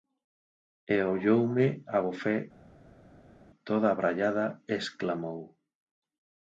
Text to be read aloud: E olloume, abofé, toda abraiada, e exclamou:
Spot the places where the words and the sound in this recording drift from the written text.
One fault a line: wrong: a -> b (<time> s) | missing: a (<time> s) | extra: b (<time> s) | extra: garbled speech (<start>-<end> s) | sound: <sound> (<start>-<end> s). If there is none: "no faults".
no faults